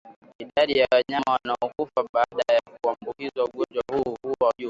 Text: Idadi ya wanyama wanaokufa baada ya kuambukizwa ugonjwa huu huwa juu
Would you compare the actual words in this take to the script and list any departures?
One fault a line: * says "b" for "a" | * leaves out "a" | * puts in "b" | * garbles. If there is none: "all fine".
all fine